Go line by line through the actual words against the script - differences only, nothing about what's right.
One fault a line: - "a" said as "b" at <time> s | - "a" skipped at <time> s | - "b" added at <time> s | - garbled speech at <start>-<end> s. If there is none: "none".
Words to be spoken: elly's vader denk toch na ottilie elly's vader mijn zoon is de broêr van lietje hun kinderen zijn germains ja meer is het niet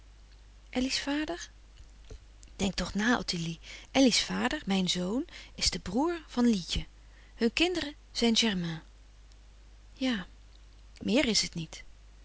none